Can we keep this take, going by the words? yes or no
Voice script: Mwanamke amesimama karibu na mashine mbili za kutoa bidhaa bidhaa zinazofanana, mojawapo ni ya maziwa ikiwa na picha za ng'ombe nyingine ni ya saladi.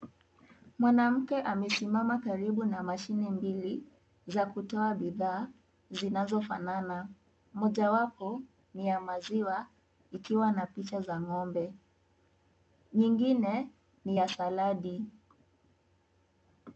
no